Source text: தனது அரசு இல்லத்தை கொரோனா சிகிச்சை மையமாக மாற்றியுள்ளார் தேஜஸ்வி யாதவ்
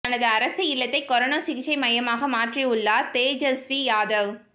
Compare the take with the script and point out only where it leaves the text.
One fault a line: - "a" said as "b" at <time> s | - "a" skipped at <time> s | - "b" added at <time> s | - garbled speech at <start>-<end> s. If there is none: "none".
none